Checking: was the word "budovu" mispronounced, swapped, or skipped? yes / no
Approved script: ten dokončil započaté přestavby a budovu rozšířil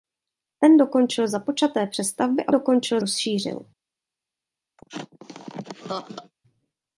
yes